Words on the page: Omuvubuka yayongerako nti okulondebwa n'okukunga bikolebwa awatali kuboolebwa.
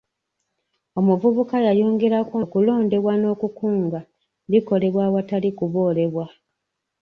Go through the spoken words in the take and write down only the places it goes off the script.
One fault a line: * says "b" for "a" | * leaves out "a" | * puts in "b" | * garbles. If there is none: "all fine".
* leaves out "nti"